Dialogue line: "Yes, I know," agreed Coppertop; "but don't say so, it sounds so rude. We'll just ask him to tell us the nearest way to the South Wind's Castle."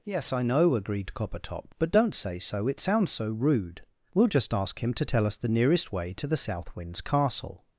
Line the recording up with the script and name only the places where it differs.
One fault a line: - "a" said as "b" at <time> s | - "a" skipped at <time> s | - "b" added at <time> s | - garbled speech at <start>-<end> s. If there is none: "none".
none